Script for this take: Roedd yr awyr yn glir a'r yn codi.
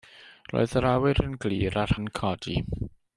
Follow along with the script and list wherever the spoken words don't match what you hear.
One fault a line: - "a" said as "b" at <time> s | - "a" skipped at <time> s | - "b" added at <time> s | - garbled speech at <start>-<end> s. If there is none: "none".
none